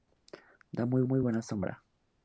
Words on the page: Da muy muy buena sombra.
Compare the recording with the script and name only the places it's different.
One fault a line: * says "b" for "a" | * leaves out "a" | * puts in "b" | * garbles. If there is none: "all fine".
all fine